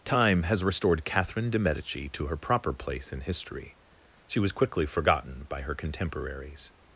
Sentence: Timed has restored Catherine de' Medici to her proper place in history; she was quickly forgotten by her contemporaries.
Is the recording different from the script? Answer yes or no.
yes